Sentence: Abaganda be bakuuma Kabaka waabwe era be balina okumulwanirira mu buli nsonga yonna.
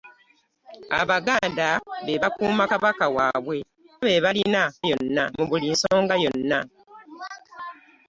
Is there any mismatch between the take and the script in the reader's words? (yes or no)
yes